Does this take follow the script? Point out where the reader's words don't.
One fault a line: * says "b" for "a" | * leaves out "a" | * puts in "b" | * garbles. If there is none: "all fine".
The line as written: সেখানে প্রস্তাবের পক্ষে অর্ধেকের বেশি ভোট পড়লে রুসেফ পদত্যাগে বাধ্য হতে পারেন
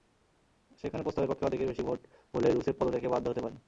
all fine